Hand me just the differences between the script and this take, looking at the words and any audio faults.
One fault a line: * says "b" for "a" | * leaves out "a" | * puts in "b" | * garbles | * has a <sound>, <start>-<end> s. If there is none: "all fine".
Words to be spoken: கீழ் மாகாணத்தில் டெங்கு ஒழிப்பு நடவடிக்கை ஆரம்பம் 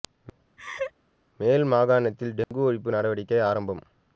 * has a laugh, 0.6-0.9 s
* says "மேல்" for "கீழ்"
* has a dropout, 2.4-2.5 s